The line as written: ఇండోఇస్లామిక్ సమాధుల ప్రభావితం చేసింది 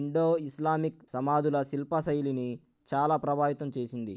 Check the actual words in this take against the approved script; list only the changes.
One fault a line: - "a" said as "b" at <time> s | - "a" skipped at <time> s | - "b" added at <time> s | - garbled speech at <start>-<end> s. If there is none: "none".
- "శిల్పశైలిని చాలా" added at 1.6 s